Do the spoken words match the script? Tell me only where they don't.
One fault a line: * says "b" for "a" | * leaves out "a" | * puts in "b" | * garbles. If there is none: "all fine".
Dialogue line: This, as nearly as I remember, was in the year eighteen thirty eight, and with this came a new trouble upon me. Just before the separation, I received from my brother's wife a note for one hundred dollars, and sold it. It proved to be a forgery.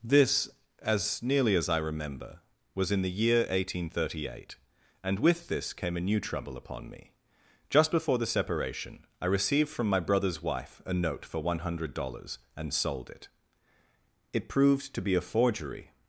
all fine